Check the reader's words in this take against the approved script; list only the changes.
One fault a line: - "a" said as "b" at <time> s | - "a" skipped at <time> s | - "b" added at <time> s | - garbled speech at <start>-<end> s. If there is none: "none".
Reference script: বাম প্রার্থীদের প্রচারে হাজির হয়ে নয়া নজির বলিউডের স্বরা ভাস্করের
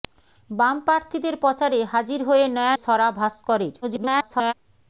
- "নজির বলিউডের" skipped at 2.8 s
- garbled speech at 3.8-4.5 s